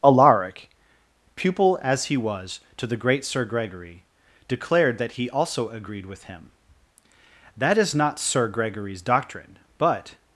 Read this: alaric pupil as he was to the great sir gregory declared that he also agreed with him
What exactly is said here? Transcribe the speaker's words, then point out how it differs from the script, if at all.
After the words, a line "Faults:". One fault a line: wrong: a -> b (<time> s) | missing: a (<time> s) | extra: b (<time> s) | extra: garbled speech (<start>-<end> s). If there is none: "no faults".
alaric pupil as he was to the great sir gregory declared that he also agreed with him that is not sir gregory's doctrine but
Faults:
extra: that is not sir gregory's doctrine but (7.5 s)